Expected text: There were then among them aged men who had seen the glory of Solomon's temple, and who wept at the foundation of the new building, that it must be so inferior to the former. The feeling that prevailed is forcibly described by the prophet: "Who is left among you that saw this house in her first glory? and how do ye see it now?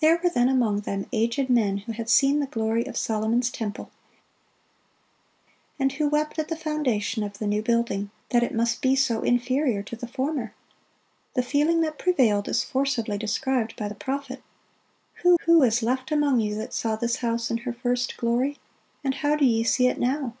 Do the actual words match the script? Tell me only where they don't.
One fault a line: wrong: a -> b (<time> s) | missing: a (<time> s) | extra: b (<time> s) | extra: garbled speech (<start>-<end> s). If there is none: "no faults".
extra: who (15.5 s)